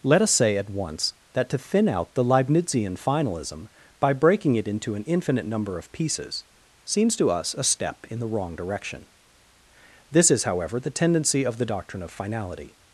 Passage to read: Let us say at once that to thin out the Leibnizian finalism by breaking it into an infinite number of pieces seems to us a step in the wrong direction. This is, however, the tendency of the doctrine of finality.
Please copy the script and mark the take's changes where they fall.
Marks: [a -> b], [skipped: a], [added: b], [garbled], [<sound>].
Let us say at once that to thin out the Leibnizian finalism by breaking it into an infinite number of pieces seems to us a step in the wrong direction. This is, however, the tendency of the doctrine of finality.